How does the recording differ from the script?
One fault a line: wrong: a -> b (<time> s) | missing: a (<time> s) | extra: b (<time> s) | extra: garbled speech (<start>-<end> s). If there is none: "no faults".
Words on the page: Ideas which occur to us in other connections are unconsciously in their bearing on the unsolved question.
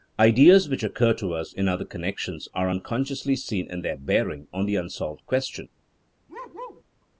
extra: seen (3.3 s)